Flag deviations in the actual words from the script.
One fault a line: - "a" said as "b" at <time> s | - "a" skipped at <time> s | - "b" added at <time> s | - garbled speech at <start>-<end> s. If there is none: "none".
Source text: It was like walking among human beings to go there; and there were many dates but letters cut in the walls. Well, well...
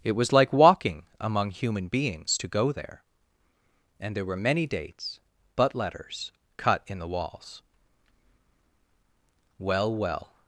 none